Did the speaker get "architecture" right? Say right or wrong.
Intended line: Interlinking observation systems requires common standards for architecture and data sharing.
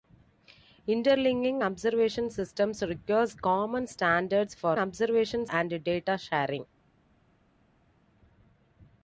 wrong